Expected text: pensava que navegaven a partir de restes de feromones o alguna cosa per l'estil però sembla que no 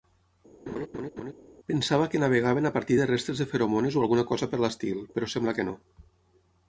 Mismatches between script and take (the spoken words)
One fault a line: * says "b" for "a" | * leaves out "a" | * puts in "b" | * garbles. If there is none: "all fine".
all fine